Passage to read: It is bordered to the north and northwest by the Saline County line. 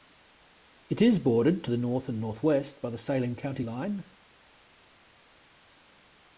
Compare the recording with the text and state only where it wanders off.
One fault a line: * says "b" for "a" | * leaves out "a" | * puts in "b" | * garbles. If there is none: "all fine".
all fine